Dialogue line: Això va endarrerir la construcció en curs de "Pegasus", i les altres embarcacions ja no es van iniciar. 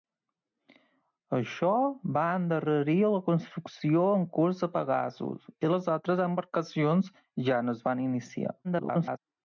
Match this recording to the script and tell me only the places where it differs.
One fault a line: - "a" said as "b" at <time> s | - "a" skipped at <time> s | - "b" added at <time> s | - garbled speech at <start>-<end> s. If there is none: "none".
- garbled speech at 8.6-9.2 s